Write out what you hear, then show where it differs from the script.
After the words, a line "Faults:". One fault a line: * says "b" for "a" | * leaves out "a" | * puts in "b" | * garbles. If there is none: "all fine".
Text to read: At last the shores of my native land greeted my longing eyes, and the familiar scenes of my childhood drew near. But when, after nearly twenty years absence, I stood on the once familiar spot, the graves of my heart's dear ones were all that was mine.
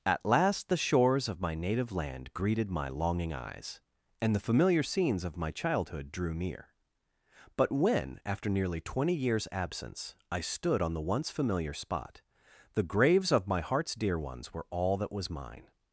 At last the shores of my native land greeted my longing eyes, and the familiar scenes of my childhood drew near. But when, after nearly twenty years absence, I stood on the once familiar spot, the graves of my heart's dear ones were all that was mine.
Faults:
all fine